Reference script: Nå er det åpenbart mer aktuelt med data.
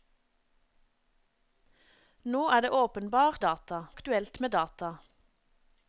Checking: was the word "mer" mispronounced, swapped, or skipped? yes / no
yes